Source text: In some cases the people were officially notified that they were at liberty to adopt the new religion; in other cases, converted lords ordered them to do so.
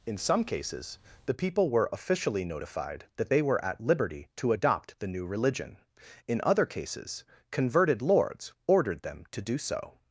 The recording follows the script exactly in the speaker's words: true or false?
true